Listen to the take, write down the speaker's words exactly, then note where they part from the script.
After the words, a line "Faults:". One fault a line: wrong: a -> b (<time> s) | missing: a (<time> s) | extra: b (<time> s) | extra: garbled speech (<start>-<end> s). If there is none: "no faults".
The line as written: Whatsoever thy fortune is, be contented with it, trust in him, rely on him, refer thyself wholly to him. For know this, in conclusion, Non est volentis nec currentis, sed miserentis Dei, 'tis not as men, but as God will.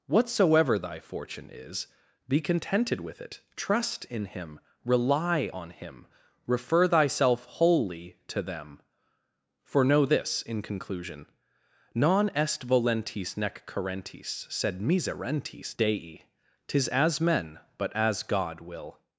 Whatsoever thy fortune is, be contented with it, trust in him, rely on him, refer thyself wholly to them. For know this, in conclusion, Non est volentis nec currentis, sed miserentis Dei, 'tis as men, but as God will.
Faults:
wrong: him -> them (8.4 s)
missing: not (16.9 s)